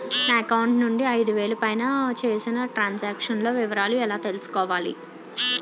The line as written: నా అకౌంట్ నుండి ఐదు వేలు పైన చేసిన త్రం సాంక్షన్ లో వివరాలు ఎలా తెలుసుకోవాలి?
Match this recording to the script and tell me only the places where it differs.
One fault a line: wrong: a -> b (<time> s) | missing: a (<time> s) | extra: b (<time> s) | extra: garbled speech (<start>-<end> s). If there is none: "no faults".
no faults